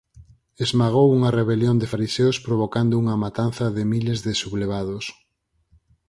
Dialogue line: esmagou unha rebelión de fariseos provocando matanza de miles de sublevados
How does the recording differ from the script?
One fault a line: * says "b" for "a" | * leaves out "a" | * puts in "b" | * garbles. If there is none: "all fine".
* puts in "unha"